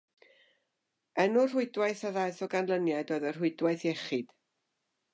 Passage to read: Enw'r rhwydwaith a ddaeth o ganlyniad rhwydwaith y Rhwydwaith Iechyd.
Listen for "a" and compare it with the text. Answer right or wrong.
right